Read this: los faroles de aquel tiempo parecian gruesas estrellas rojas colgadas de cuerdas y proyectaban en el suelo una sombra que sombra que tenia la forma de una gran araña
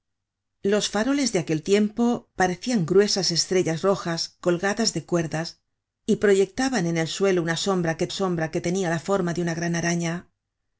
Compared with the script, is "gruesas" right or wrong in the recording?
right